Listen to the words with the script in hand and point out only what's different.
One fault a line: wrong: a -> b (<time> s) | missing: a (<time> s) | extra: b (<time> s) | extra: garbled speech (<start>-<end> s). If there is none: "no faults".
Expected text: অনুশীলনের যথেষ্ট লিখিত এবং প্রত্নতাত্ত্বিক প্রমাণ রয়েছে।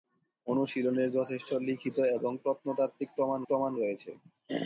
extra: প্রমাণ (3.5 s)